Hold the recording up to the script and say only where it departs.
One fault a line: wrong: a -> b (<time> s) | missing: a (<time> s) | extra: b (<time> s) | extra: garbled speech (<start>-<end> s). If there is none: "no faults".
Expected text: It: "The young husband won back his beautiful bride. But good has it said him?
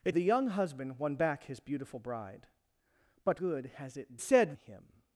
no faults